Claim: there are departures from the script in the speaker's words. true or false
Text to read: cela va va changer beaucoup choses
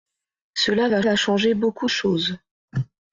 false